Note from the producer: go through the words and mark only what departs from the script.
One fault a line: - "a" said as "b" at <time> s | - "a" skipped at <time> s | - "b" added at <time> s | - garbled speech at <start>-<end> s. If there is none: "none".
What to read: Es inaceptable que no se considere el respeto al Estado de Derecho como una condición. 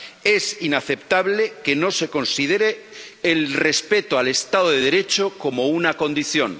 none